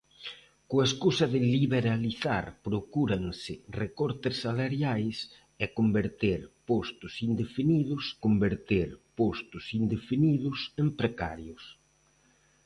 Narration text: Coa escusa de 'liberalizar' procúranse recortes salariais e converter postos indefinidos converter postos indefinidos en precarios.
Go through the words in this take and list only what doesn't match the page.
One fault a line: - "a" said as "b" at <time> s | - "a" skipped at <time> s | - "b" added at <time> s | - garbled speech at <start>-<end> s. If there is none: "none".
none